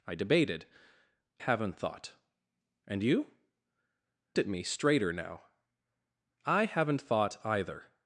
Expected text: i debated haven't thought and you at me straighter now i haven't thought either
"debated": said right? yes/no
yes